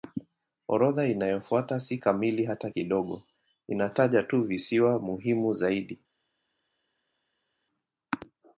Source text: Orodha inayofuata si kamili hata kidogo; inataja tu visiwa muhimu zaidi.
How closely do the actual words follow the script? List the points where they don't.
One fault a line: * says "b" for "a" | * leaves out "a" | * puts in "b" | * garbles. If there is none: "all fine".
all fine